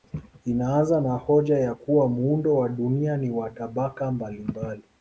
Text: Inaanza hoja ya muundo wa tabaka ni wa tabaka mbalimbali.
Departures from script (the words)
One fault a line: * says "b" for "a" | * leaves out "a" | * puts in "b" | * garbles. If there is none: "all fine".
* puts in "na"
* puts in "kuwa"
* says "dunia" for "tabaka"